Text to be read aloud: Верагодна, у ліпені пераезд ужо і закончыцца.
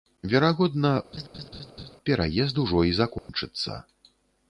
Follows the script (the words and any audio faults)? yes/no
no